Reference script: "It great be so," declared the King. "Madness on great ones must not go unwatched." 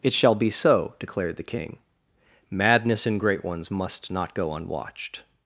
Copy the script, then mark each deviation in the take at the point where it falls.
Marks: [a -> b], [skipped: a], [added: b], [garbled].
"It [great -> shall] be so," declared the King. "Madness [on -> in] great ones must not go unwatched."